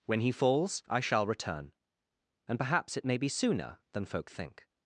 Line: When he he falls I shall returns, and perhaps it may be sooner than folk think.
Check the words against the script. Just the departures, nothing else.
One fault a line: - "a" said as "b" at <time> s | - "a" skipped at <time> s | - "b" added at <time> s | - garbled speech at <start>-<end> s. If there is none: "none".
- "he" skipped at 0.3 s
- "returns" said as "return" at 1.3 s